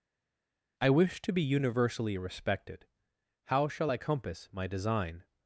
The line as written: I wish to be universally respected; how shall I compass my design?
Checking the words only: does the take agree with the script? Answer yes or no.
yes